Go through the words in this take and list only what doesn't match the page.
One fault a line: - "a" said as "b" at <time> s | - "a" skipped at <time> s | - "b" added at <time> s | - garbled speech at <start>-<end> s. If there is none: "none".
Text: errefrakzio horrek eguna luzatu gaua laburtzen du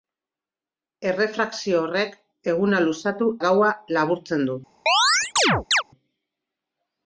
none